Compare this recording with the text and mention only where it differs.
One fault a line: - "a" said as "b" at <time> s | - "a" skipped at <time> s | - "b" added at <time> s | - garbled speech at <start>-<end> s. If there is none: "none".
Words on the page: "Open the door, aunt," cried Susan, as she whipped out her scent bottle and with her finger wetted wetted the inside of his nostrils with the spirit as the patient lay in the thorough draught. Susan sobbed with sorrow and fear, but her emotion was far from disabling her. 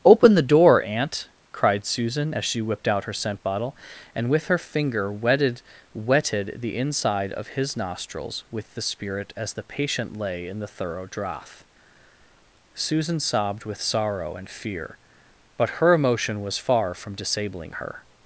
none